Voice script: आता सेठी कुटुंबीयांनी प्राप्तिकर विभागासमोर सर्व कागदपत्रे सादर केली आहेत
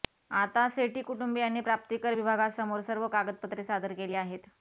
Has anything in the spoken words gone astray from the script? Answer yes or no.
no